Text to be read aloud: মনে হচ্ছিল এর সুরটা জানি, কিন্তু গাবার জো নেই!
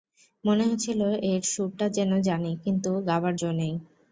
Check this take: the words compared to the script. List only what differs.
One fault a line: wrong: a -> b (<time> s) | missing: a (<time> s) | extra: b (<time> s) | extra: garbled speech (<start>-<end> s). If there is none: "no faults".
extra: যেন (2.0 s)